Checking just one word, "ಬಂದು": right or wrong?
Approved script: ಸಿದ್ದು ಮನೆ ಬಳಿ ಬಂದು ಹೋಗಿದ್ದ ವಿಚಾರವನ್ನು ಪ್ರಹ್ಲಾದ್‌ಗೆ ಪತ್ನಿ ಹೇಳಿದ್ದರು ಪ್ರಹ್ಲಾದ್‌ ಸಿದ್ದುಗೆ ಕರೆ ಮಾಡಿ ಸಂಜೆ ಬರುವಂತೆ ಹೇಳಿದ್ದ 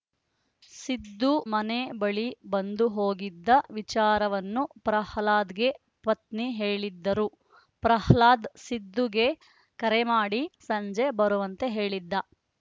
right